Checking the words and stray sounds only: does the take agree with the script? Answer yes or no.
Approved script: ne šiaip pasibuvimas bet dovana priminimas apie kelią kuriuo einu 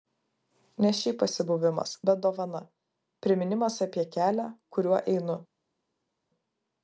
yes